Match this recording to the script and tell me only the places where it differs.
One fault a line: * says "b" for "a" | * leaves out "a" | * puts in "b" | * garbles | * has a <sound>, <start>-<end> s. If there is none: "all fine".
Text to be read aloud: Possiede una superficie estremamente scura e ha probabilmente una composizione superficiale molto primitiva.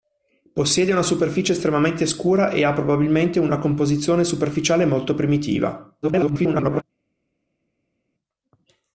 * garbles